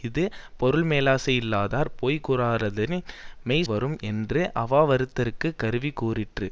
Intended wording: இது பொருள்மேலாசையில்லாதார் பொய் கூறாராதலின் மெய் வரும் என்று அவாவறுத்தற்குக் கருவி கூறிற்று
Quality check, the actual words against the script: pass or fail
pass